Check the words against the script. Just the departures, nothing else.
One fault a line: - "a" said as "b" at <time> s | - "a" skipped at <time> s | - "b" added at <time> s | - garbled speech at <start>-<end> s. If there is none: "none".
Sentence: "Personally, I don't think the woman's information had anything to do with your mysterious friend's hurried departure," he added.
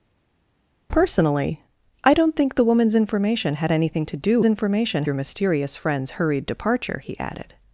- "with" said as "information" at 4.4 s